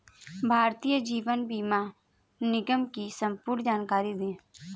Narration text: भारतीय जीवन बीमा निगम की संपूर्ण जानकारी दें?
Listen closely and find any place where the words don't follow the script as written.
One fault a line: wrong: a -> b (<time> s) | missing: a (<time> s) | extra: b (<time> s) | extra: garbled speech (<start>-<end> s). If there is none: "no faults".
no faults